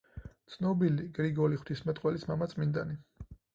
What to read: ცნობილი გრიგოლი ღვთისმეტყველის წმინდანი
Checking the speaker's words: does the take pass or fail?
fail